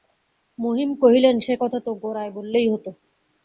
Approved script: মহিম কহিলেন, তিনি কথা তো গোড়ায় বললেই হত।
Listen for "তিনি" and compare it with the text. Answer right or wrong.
wrong